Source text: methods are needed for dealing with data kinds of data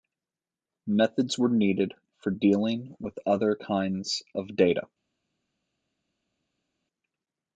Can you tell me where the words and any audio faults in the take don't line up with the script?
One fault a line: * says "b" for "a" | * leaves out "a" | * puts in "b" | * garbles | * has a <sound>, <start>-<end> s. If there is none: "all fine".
* says "were" for "are"
* says "other" for "data"